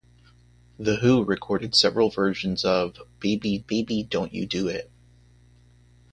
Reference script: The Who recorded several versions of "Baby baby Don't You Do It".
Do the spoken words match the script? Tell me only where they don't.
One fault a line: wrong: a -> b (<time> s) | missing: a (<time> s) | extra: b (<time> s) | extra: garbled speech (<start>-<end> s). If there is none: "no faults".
no faults